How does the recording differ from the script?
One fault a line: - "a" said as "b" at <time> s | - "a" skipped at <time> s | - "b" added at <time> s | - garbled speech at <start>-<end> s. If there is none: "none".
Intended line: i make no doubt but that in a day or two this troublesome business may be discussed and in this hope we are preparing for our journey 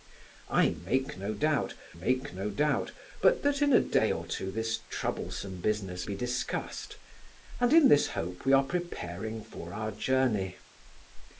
- "make no doubt" added at 2.0 s
- "may" skipped at 6.1 s